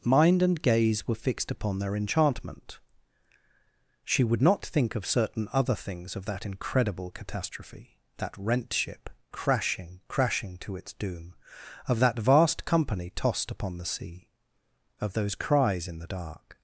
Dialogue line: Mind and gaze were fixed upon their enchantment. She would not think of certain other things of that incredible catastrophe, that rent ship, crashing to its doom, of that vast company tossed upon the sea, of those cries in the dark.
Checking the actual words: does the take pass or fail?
fail